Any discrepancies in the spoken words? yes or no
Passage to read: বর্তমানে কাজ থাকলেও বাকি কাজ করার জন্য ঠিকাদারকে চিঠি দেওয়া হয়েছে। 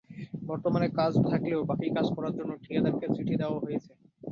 no